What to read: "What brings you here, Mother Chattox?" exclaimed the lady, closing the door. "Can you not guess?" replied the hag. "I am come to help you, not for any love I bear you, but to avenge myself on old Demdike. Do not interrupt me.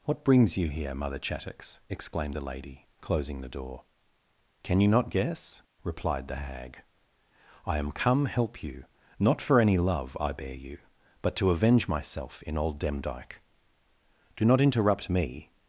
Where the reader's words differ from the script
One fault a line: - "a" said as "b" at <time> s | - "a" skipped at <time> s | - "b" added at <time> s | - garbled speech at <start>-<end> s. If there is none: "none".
- "to" skipped at 8.3 s
- "on" said as "in" at 12.4 s